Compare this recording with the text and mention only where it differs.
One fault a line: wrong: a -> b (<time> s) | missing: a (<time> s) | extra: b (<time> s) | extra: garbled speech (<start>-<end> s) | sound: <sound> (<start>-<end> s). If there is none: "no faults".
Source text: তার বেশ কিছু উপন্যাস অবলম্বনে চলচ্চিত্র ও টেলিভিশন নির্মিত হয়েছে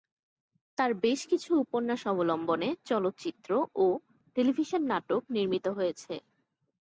extra: নাটক (4.9 s)